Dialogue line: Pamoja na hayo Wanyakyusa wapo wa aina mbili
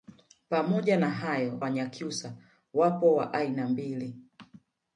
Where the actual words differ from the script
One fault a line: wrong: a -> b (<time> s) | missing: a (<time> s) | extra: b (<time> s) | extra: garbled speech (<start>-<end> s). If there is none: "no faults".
no faults